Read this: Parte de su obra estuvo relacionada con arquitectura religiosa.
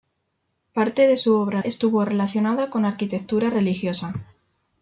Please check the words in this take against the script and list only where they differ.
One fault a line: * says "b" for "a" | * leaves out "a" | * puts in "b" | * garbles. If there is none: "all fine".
all fine